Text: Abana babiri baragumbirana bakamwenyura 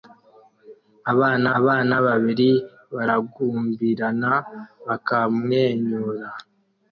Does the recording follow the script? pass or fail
fail